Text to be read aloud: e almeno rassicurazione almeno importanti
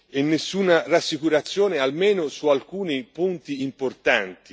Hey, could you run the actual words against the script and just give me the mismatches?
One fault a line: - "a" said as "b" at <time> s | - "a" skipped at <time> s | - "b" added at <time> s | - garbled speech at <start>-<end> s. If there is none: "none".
- "almeno" said as "nessuna" at 0.2 s
- "su alcuni punti" added at 2.3 s